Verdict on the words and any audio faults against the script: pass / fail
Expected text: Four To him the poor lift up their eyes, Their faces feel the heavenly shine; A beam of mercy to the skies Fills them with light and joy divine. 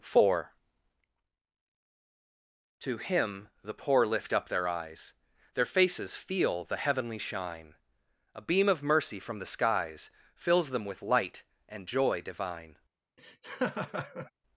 fail